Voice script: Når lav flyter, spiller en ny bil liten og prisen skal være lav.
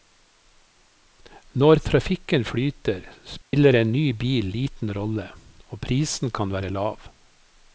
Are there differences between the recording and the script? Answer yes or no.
yes